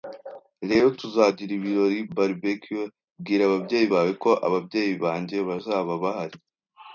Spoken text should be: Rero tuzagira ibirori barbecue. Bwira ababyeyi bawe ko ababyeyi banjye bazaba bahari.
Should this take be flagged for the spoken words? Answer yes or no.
no